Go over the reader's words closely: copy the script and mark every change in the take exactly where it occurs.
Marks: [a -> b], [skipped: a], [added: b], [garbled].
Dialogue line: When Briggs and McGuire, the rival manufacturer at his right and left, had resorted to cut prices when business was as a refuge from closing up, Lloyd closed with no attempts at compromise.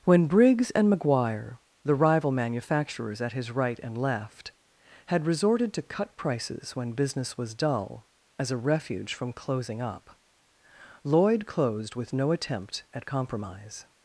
When Briggs and McGuire, the rival [manufacturer -> manufacturers] at his right and left, had resorted to cut prices when business was [added: dull] as a refuge from closing up, Lloyd closed with no [attempts -> attempt] at compromise.